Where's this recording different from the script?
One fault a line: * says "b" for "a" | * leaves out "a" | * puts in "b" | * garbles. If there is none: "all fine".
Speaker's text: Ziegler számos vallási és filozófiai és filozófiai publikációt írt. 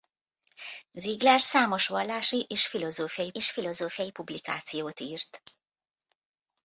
all fine